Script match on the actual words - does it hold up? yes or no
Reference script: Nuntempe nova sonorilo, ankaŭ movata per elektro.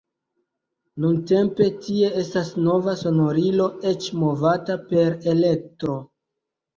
no